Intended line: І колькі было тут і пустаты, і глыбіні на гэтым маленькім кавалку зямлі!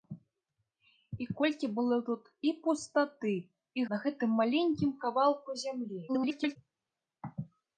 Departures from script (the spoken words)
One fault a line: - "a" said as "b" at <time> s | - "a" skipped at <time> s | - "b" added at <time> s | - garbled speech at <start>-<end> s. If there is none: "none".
- "глыбіні" skipped at 3.9 s
- garbled speech at 6.1-6.6 s